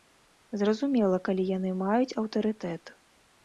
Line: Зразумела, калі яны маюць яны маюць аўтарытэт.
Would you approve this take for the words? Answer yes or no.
no